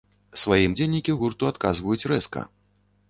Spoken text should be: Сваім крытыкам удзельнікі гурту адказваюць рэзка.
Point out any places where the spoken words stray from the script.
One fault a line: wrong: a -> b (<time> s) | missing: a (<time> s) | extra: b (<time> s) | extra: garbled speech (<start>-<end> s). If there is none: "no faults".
missing: крытыкам (0.7 s)